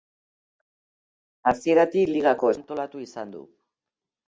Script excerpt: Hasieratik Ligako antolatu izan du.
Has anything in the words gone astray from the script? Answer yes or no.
no